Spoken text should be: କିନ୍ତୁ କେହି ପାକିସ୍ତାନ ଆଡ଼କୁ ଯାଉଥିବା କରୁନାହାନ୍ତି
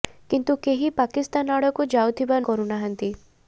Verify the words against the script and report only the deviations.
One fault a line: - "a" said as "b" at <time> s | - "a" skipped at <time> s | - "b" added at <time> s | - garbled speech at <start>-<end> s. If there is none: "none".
none